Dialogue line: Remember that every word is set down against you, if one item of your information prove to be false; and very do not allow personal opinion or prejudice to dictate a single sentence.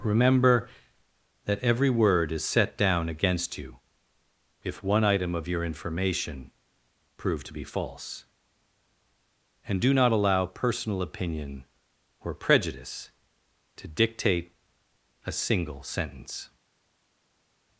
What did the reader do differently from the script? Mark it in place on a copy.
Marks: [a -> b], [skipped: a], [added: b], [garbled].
Remember that every word is set down against you, if one item of your information prove to be false; and [skipped: very] do not allow personal opinion or prejudice to dictate a single sentence.